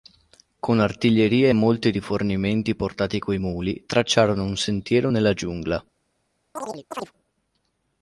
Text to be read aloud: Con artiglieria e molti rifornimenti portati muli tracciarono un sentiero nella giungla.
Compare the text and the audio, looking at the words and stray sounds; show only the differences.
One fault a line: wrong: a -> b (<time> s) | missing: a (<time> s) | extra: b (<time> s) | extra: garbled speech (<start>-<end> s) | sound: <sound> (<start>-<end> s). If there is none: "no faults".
extra: coi (3.2 s)
sound: chirp (6.6-7.1 s)